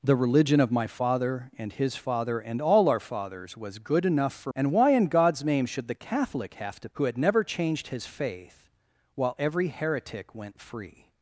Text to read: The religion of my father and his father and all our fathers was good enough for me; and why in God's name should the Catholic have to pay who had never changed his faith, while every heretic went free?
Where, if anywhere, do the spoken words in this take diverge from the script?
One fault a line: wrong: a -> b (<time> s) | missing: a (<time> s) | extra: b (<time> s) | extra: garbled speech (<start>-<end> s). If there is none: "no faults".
missing: me (4.5 s)
missing: pay (6.9 s)